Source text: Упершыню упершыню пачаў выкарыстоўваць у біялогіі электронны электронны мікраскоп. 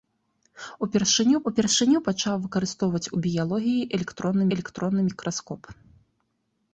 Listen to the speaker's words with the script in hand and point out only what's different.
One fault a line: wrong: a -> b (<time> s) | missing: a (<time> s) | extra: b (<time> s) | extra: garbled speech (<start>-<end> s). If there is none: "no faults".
no faults